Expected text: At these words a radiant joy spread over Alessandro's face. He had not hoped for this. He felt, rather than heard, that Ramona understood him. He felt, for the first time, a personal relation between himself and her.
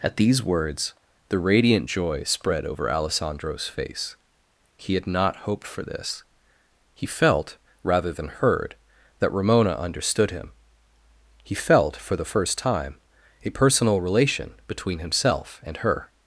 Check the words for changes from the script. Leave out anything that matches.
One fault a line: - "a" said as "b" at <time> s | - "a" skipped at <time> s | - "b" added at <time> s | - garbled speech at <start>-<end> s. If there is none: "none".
- "a" said as "the" at 1.3 s